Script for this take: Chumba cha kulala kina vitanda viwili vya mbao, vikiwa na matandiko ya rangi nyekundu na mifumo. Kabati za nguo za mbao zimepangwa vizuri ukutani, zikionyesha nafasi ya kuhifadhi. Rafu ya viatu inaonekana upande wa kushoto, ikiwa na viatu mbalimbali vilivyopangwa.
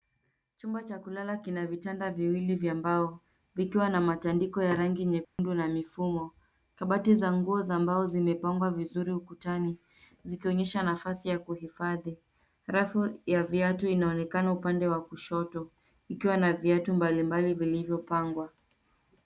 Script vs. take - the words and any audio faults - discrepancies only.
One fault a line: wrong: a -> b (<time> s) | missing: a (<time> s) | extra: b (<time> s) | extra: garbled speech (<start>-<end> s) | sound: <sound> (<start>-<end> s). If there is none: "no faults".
sound: dropout (5.2-5.4 s)